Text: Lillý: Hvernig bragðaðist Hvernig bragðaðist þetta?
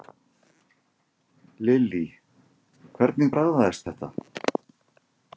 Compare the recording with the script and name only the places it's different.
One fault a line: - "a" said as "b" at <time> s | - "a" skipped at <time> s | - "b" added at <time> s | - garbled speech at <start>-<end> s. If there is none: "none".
- "Hvernig bragðaðist" skipped at 3.9 s